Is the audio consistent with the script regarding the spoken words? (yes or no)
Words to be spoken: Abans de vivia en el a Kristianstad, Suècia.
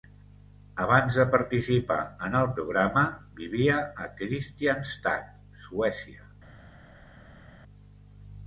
no